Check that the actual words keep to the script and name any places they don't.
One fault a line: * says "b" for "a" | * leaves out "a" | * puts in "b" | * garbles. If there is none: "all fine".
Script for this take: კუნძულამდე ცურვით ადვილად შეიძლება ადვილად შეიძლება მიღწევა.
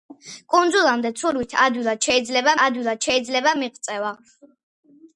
all fine